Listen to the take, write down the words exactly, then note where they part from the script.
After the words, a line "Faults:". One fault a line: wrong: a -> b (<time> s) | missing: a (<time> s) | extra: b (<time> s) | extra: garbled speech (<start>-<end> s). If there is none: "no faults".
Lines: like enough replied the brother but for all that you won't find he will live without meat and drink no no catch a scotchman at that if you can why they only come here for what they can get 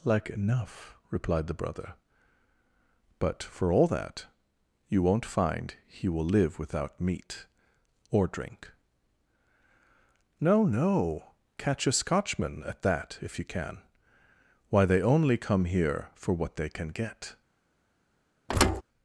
like enough replied the brother but for all that you won't find he will live without meat or drink no no catch a scotchman at that if you can why they only come here for what they can get
Faults:
wrong: and -> or (8.1 s)